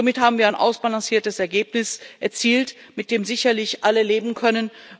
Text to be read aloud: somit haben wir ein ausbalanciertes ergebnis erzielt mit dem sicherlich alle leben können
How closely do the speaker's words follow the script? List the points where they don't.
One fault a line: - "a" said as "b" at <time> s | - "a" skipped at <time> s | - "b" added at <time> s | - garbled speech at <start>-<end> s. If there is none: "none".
none